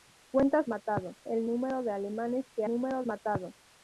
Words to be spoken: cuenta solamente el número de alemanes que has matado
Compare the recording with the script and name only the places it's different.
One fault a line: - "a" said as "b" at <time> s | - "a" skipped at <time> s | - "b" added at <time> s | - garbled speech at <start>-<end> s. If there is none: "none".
- "solamente" said as "matado" at 0.7 s
- "has" said as "número" at 2.7 s